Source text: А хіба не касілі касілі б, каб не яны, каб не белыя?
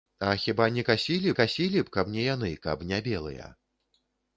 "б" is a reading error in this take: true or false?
false